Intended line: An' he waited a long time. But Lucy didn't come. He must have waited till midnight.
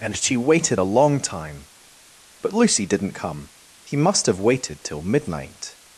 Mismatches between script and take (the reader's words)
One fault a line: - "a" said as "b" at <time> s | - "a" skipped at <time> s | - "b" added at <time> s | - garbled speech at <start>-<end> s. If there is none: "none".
- "An he" said as "And she" at 0.0 s